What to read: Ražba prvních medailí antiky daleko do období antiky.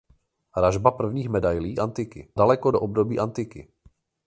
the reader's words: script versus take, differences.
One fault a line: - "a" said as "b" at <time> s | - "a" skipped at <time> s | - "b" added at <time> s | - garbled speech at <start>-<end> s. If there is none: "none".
none